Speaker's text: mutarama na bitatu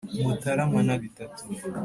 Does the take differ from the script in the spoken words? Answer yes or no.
no